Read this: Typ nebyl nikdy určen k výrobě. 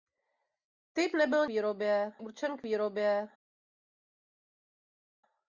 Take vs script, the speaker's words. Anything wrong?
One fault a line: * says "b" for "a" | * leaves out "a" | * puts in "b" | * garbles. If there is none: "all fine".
* says "výrobě" for "nikdy"